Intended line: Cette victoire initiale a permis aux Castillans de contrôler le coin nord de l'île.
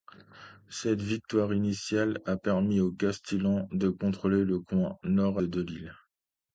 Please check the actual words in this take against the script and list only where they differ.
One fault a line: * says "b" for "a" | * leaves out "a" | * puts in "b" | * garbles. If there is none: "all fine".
all fine